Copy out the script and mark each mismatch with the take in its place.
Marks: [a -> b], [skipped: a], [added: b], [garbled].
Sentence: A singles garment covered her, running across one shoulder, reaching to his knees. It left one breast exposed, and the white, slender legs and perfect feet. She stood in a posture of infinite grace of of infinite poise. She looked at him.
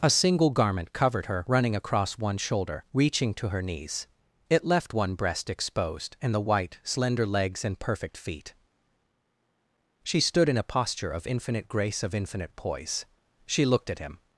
A [singles -> single] garment covered her, running across one shoulder, reaching to [his -> her] knees. It left one breast exposed, and the white, slender legs and perfect feet. She stood in a posture of infinite grace of [skipped: of] infinite poise. She looked at him.